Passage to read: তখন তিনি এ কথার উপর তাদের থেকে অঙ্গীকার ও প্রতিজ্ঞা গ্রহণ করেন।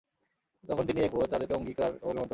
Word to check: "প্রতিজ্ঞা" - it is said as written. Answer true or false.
false